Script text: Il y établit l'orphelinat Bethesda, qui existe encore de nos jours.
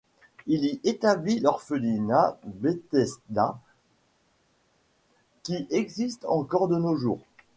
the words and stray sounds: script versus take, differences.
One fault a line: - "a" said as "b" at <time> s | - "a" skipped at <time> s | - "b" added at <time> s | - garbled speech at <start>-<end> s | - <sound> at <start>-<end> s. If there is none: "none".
none